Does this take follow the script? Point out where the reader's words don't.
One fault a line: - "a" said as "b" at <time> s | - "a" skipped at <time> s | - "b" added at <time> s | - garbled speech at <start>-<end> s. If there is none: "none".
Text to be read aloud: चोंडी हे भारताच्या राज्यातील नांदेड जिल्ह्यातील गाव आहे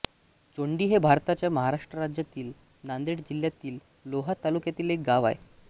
- "महाराष्ट्र" added at 1.5 s
- "लोहा तालुक्यातील एक" added at 4.0 s